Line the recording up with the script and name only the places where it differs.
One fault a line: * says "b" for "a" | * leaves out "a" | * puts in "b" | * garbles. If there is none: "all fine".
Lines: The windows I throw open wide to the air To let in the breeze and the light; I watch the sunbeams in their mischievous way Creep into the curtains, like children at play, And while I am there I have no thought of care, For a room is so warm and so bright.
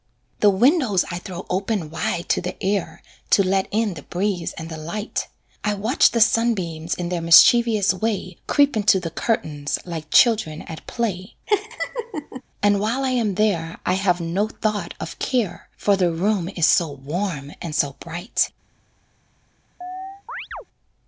* says "the" for "a"